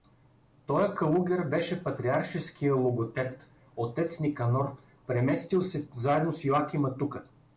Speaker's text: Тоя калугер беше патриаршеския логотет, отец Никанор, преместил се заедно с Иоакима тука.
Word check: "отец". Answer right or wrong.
right